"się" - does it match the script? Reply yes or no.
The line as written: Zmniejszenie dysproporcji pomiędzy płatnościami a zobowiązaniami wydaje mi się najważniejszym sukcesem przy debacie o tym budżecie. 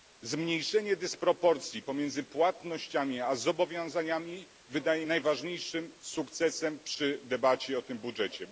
no